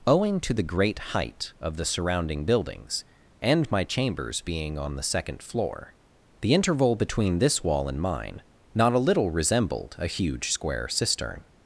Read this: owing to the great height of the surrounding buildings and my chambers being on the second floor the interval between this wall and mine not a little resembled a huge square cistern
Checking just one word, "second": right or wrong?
right